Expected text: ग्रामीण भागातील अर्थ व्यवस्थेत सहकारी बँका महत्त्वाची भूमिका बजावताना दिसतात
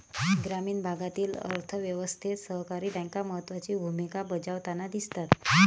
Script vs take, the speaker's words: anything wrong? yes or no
no